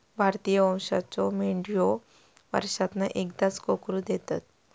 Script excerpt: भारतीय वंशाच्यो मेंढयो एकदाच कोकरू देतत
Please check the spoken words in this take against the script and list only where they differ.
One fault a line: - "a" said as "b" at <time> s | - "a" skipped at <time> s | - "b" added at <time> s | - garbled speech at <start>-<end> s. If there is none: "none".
- "वर्षांतना" added at 2.5 s